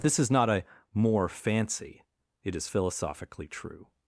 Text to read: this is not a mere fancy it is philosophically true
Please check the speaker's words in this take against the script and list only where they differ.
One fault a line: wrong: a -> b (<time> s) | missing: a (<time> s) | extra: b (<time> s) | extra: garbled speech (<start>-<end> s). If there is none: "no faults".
wrong: mere -> more (0.9 s)